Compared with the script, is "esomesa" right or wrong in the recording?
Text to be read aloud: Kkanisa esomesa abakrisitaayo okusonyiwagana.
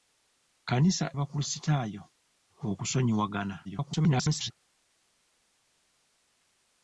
wrong